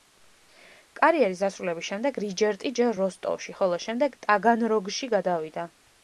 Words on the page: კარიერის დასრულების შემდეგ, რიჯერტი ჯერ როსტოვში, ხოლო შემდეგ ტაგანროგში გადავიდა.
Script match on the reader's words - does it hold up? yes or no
yes